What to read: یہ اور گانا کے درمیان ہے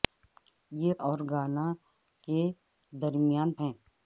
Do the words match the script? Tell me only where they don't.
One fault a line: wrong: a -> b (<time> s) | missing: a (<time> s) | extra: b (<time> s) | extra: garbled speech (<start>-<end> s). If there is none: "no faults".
no faults